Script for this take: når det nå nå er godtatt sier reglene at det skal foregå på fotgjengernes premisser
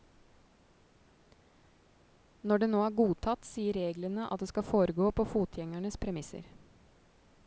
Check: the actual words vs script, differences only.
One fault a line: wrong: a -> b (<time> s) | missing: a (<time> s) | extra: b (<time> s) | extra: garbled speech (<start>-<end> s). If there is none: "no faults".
missing: nå (2.8 s)